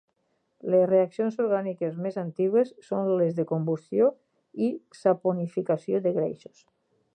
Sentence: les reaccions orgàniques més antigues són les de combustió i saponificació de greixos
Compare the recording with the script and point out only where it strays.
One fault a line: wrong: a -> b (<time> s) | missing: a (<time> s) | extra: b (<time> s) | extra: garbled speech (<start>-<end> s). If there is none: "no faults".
no faults